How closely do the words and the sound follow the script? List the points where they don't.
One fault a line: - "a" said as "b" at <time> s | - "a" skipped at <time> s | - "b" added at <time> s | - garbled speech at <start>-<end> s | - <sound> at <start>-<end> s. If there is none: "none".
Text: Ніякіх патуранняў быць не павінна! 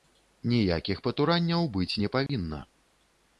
- dropout at 2.3-2.3 s